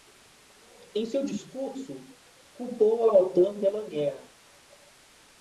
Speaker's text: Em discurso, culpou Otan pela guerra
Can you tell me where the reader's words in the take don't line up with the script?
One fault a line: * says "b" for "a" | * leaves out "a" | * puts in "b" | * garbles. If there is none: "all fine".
* puts in "seu"
* puts in "a"